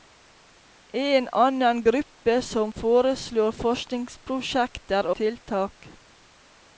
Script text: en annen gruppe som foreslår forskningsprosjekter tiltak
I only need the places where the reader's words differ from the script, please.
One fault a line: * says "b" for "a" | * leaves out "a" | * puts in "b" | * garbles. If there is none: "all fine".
all fine